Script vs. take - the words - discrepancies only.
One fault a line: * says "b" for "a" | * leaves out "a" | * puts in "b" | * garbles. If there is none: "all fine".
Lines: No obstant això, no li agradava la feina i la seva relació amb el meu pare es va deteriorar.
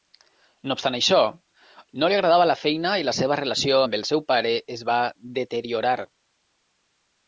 * says "seu" for "meu"